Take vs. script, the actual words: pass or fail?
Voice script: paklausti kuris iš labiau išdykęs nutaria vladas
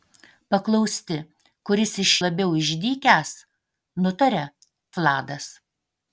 pass